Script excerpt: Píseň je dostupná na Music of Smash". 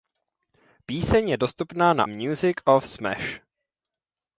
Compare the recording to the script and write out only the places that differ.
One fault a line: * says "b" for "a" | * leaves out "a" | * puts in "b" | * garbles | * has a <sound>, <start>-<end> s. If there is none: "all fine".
all fine